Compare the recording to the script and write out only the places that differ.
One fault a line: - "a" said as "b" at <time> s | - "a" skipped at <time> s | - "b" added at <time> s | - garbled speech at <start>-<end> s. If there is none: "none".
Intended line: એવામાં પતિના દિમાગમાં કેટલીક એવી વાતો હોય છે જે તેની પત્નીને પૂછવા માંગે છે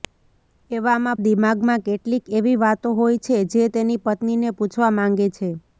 - "પતિના" skipped at 1.2 s